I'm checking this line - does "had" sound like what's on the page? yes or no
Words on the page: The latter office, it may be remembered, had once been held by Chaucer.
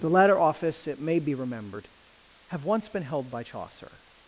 no